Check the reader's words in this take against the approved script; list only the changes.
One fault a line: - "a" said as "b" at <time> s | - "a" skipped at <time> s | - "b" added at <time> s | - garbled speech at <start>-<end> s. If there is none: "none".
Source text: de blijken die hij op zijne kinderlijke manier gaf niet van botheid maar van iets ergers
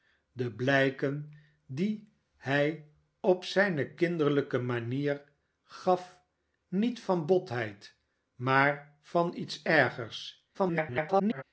- garbled speech at 10.5-11.4 s